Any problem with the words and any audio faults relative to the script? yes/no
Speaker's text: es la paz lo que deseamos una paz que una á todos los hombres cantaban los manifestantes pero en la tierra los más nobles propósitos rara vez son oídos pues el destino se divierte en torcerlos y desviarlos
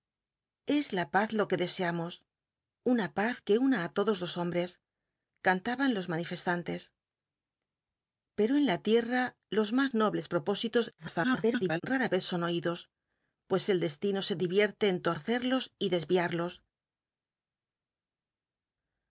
yes